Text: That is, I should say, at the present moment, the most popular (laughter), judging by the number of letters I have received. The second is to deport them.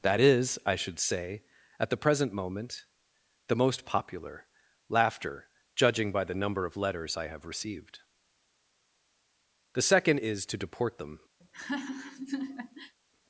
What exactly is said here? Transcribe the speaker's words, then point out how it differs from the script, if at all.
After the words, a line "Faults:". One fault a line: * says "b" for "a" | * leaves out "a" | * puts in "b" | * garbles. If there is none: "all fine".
That is, I should say, at the present moment, the most popular (laughter), judging by the number of letters I have received. The second is to deport them.
Faults:
all fine